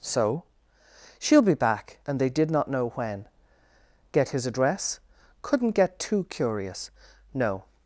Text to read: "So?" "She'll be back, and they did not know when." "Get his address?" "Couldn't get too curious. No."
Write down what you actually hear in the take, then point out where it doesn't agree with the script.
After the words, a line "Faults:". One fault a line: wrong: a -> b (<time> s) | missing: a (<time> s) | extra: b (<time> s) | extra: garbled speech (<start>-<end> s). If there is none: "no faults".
"So?" "She'll be back, and they did not know when." "Get his address?" "Couldn't get too curious. No."
Faults:
no faults